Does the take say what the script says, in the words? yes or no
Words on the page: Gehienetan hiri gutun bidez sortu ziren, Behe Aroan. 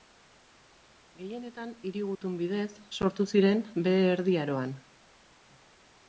no